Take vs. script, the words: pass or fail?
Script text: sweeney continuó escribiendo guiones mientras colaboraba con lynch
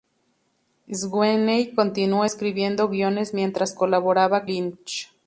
fail